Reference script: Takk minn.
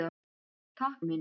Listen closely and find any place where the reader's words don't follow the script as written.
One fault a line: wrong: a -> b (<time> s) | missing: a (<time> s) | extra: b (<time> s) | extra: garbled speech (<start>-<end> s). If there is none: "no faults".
no faults